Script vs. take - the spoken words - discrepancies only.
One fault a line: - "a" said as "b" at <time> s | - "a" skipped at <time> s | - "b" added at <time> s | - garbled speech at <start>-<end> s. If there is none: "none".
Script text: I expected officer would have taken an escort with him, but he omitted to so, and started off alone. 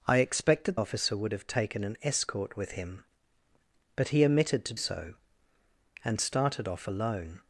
none